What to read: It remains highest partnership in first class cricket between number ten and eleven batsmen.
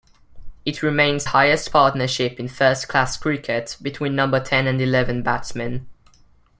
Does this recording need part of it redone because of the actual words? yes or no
no